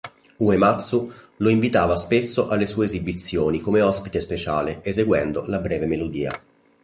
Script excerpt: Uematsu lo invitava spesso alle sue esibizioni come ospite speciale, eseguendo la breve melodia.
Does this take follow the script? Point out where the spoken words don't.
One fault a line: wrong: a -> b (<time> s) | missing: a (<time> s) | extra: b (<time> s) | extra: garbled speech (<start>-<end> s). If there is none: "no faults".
no faults